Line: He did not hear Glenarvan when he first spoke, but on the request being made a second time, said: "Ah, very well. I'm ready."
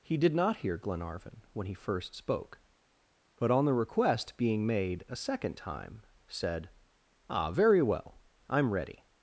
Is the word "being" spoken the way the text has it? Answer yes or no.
yes